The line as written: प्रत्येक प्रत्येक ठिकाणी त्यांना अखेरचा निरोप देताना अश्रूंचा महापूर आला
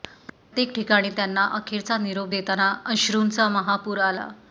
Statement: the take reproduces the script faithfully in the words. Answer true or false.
false